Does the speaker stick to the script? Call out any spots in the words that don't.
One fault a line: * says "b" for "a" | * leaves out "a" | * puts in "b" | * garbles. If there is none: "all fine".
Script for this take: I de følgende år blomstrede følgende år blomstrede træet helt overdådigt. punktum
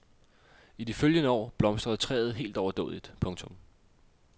* leaves out "følgende år blomstrede"